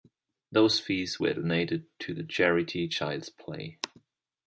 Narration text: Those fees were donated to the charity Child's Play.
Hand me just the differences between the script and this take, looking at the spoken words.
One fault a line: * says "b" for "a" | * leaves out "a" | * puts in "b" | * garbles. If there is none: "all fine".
all fine